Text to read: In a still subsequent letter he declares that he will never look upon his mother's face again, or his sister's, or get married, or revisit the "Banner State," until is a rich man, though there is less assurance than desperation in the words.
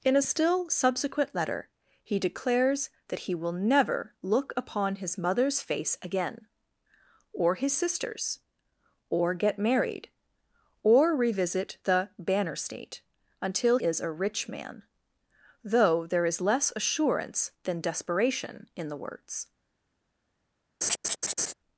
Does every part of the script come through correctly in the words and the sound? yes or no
no